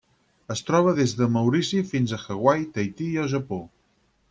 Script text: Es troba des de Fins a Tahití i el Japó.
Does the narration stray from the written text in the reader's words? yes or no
yes